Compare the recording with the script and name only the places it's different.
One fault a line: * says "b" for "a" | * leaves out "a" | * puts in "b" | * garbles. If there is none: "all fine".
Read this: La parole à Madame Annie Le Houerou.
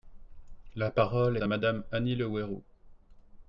all fine